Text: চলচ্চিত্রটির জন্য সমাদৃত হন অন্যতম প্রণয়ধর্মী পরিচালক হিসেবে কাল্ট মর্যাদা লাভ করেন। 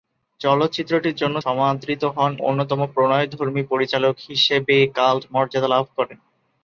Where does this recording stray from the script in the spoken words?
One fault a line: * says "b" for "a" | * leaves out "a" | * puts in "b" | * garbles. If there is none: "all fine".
all fine